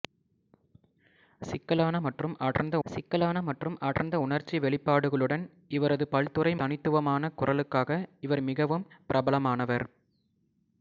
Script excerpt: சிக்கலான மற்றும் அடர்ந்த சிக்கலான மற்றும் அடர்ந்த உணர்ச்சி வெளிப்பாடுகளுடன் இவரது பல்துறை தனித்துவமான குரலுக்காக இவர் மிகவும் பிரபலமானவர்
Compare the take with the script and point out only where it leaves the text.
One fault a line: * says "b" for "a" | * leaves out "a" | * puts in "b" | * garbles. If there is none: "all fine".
all fine